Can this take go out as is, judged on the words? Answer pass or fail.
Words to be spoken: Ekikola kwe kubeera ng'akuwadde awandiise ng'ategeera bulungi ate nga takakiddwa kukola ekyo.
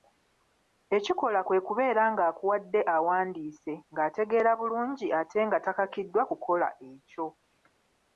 pass